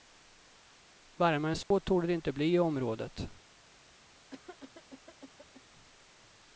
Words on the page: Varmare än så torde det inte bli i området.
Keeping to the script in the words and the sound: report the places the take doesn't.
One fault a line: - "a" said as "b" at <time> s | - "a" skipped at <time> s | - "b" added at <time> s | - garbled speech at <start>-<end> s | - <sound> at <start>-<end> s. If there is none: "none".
- dropout at 1.6-1.7 s
- cough at 4.3-5.6 s